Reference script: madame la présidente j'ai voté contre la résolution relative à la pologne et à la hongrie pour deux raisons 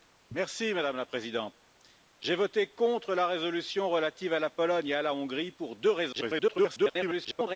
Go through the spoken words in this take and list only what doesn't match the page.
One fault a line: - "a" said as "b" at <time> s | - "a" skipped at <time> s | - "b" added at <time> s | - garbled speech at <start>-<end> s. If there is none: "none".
- garbled speech at 6.1-7.6 s